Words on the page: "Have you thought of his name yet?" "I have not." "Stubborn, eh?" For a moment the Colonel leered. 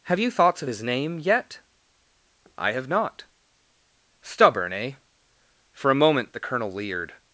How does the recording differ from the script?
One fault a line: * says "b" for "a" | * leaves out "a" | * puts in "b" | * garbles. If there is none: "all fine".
* says "thoughts" for "thought"